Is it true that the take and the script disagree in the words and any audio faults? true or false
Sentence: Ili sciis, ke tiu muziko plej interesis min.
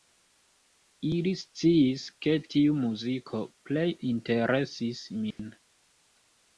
true